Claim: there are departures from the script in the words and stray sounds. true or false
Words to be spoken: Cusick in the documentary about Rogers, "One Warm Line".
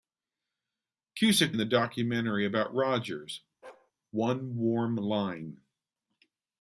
true